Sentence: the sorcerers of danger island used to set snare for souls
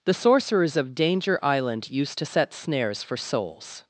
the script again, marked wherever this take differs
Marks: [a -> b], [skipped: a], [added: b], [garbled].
the sorcerers of danger island used to set [snare -> snares] for souls